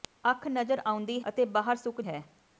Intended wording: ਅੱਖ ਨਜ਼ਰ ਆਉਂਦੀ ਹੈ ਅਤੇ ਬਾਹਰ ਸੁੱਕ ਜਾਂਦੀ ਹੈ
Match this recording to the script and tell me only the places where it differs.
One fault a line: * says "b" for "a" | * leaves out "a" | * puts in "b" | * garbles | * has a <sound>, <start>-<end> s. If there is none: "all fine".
* leaves out "ਹੈ"
* leaves out "ਜਾਂਦੀ"